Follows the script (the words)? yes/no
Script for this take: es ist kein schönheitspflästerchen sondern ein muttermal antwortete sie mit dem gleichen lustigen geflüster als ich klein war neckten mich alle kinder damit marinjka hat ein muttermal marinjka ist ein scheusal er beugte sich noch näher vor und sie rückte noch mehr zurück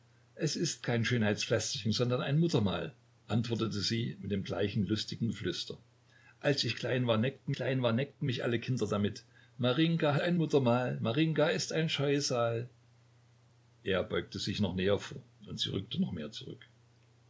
no